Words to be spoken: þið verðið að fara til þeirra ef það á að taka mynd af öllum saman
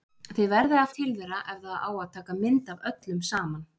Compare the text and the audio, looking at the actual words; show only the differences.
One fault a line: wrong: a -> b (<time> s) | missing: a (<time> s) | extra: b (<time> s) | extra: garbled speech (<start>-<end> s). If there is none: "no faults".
missing: fara (0.9 s)